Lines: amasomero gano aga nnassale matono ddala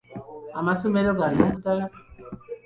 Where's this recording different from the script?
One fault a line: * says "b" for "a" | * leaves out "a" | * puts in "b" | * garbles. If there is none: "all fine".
* leaves out "aga nnassale matono"